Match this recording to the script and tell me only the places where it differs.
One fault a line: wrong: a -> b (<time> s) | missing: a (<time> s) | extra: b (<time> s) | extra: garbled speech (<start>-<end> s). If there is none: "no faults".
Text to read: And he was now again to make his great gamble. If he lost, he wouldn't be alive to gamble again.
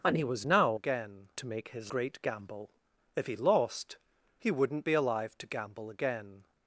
no faults